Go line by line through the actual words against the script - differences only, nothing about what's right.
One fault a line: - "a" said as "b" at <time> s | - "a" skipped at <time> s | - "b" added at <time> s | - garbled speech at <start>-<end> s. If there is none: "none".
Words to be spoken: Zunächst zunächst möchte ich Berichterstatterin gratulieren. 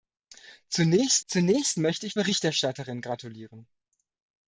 none